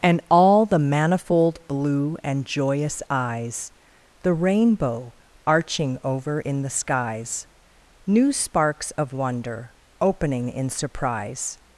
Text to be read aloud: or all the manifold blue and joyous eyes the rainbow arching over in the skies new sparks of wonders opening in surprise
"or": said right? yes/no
no